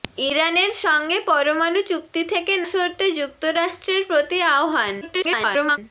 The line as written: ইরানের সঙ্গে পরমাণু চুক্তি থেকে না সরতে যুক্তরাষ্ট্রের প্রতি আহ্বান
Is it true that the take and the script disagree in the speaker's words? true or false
true